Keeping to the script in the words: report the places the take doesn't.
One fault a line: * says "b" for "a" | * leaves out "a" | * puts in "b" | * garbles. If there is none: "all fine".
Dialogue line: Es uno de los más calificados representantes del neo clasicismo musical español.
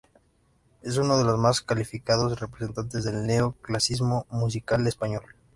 all fine